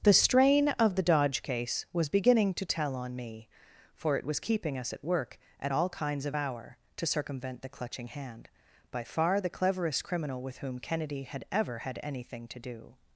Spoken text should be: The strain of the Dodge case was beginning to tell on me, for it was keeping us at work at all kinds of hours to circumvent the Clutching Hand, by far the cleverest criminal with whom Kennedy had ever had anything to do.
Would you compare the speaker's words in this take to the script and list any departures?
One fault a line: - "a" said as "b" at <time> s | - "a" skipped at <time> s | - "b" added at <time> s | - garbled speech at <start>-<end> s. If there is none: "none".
- "hours" said as "hour" at 6.3 s